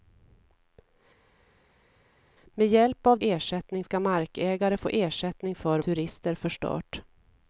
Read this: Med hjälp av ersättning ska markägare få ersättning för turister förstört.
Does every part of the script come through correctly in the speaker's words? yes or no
yes